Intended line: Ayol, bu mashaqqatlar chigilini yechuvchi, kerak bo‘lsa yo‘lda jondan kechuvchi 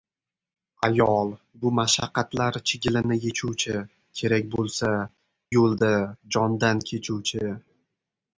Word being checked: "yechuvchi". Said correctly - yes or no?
yes